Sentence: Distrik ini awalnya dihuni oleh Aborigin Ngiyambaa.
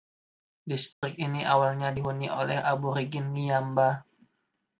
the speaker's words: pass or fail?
pass